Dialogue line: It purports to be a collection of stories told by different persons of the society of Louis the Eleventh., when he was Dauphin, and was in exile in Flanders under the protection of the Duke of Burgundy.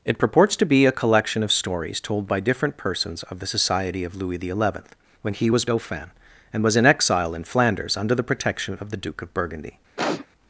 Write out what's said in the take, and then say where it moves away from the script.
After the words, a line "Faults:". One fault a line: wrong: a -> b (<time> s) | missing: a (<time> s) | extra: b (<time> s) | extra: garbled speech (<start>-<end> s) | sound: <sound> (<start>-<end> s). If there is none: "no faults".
It purports to be a collection of stories told by different persons of the society of Louis the Eleventh., when he was Dauphin, and was in exile in Flanders under the protection of the Duke of Burgundy.
Faults:
sound: sniff (10.0-10.3 s)